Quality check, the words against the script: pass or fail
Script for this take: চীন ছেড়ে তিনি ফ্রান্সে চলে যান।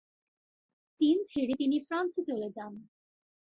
pass